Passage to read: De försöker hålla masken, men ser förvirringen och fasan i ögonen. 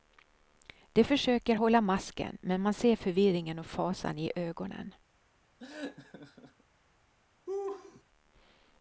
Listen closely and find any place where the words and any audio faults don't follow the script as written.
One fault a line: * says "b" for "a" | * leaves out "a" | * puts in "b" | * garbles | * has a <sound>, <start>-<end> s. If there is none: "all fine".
* puts in "man"
* has a laugh, 5.6-6.6 s
* has a laugh, 7.5-8.0 s